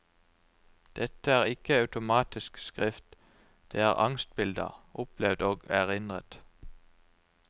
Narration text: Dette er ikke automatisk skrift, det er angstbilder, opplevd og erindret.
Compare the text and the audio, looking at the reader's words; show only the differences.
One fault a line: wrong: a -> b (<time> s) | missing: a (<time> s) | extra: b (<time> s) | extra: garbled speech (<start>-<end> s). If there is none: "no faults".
no faults